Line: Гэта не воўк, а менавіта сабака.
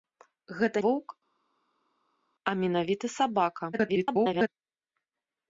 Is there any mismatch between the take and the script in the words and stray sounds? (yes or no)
yes